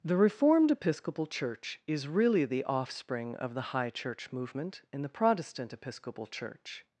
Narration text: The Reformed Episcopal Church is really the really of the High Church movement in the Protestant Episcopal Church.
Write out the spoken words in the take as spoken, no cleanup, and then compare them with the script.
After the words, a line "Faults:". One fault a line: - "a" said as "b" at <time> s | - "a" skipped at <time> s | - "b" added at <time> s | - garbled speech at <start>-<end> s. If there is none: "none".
The Reformed Episcopal Church is really the offspring of the High Church movement in the Protestant Episcopal Church.
Faults:
- "really" said as "offspring" at 2.6 s